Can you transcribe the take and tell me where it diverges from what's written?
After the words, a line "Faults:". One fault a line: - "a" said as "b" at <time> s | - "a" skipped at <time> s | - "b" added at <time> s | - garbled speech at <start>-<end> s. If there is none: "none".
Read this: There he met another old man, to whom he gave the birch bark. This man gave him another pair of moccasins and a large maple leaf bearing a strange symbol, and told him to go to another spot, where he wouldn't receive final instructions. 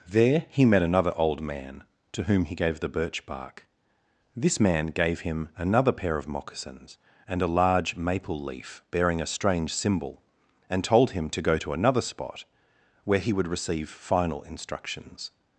There he met another old man, to whom he gave the birch bark. This man gave him another pair of moccasins and a large maple leaf bearing a strange symbol, and told him to go to another spot, where he would receive final instructions.
Faults:
- "wouldn't" said as "would" at 13.3 s